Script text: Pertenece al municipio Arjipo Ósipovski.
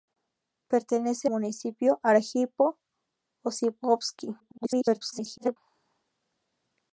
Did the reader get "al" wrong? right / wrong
wrong